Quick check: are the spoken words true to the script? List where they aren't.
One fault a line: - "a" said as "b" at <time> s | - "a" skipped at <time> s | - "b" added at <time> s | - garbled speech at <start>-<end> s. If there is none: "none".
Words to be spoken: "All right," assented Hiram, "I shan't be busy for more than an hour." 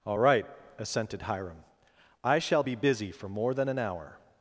- "shan't" said as "shall" at 2.4 s